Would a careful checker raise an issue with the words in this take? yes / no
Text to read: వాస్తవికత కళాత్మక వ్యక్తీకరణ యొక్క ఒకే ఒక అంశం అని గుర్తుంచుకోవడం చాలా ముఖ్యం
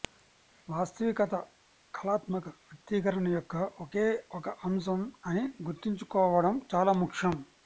no